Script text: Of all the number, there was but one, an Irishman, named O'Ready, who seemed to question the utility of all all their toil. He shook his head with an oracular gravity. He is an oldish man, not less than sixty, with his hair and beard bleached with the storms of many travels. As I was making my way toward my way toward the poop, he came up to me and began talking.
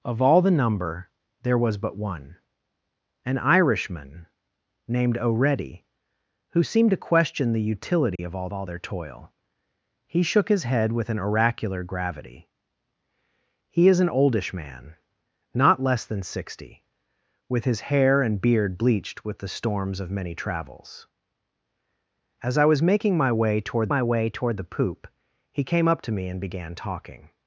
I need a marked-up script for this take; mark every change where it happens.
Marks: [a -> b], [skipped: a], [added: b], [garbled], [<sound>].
Of all the number, there was but one, an Irishman, named O'Ready, who seemed to question the utility [dropout] of all all their toil. He shook his head with an oracular gravity. He is an oldish man, not less than sixty, with his hair and beard bleached with the storms of many travels. As I was making my way toward my way toward the poop, he came up to me and began talking.